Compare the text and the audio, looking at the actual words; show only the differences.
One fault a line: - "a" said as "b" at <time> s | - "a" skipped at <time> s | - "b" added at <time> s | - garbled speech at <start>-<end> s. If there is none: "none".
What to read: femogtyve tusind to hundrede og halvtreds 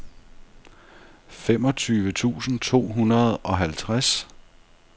none